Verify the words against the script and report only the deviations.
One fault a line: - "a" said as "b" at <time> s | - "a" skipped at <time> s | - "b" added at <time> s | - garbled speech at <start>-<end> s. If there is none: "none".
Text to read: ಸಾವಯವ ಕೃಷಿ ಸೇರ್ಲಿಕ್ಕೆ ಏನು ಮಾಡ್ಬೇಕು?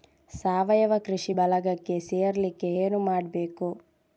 - "ಬಳಗಕ್ಕೆ" added at 1.4 s